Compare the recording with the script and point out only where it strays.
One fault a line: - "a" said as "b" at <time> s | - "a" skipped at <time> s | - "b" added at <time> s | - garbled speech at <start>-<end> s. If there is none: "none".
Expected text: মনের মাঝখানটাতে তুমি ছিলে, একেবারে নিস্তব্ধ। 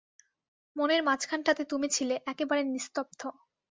none